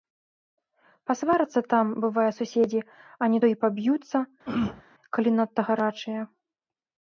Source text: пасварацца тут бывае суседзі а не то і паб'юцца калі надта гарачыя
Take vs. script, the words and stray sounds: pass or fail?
fail